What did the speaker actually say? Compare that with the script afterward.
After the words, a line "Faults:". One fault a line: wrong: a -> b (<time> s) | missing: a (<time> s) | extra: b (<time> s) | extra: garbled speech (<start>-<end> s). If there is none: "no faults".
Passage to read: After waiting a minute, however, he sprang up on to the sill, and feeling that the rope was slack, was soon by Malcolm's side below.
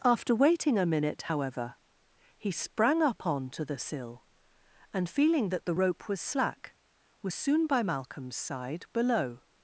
After waiting a minute, however, he sprang up on to the sill, and feeling that the rope was slack, was soon by Malcolm's side below.
Faults:
no faults